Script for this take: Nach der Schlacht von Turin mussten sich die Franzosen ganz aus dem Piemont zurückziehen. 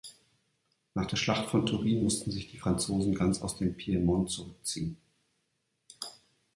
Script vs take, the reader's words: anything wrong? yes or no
no